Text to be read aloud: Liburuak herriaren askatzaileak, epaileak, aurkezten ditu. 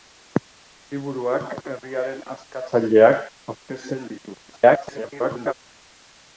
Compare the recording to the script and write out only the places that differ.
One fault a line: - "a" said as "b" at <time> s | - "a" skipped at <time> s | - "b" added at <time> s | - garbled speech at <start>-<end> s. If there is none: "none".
- "epaileak" skipped at 3.2 s
- garbled speech at 4.5-5.5 s